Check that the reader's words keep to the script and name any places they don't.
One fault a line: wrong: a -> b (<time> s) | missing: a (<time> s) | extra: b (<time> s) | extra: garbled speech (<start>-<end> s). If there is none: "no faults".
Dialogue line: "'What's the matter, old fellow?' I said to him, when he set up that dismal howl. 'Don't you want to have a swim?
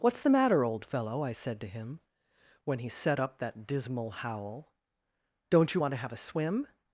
no faults